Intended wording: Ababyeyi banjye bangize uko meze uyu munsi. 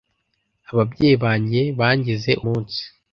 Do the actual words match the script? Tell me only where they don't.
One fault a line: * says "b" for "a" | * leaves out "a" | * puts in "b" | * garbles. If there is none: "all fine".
* leaves out "uko meze uyu"